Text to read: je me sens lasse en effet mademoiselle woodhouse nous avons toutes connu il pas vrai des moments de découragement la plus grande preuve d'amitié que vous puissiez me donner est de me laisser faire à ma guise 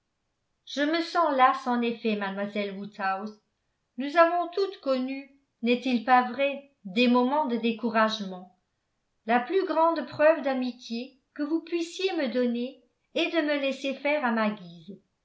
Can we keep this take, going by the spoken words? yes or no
no